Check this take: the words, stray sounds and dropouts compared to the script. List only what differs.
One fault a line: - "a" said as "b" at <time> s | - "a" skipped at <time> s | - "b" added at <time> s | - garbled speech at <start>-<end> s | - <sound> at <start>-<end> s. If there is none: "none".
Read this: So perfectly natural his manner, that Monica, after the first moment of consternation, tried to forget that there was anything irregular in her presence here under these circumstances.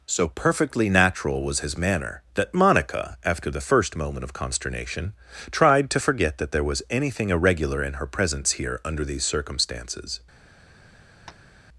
- "was" added at 1.4 s
- tap at 11.3-11.5 s